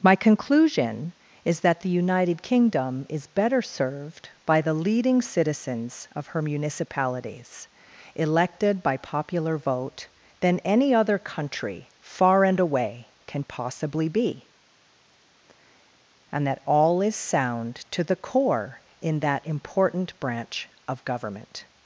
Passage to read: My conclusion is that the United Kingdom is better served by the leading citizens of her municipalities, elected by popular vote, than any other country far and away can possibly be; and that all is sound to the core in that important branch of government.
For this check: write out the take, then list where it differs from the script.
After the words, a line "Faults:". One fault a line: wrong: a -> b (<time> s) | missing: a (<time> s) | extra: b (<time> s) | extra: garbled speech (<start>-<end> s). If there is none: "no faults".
My conclusion is that the United Kingdom is better served by the leading citizens of her municipalities, elected by popular vote, than any other country far and away can possibly be; and that all is sound to the core in that important branch of government.
Faults:
no faults